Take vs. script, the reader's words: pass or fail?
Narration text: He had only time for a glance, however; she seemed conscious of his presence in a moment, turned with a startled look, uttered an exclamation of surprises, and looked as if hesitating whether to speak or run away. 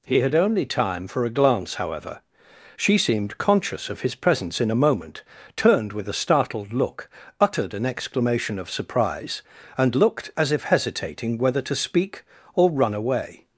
fail